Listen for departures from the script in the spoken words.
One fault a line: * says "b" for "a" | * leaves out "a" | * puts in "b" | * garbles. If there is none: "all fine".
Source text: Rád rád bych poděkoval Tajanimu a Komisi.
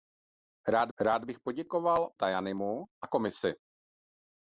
all fine